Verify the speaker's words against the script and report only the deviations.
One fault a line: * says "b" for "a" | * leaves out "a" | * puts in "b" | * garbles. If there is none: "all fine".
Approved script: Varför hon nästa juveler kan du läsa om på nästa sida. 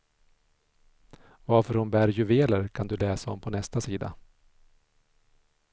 * says "bär" for "nästa"